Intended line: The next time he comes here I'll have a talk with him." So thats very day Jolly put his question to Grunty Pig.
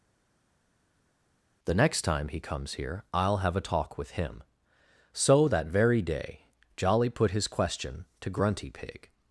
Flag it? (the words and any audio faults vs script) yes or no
yes